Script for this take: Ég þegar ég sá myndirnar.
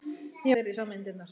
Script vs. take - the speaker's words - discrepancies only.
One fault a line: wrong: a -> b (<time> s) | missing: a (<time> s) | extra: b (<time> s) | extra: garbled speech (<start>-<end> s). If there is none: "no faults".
no faults